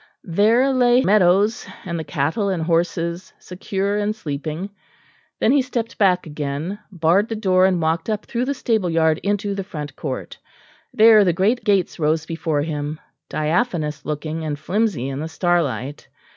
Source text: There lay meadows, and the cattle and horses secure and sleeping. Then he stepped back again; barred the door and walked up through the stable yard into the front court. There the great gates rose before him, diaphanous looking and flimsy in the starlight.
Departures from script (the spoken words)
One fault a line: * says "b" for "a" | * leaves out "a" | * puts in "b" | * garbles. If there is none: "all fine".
all fine